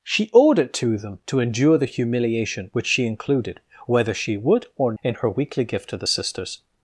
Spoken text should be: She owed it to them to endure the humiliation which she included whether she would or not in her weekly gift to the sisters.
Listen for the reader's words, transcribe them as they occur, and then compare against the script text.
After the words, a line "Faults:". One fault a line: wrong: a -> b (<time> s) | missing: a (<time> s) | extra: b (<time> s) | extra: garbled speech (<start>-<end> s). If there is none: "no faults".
She owed it to them to endure the humiliation which she included whether she would or in her weekly gift to the sisters.
Faults:
missing: not (4.9 s)